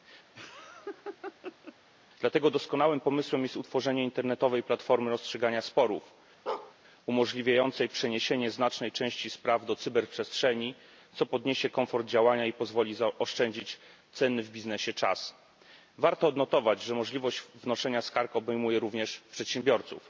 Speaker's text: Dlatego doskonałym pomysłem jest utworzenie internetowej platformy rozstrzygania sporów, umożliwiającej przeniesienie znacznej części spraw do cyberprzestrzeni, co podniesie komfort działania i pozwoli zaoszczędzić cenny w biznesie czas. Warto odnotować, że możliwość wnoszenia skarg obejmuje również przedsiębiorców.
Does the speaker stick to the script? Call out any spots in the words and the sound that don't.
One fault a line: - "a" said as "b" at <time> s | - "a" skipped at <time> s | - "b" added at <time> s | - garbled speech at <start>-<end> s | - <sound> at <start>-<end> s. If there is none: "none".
- laugh at 0.3-1.8 s
- bark at 6.5-6.7 s